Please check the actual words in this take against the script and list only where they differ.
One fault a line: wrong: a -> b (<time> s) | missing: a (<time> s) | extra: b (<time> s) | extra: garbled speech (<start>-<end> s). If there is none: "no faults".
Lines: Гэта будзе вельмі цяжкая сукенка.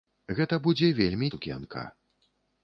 missing: цяжкая (1.3 s)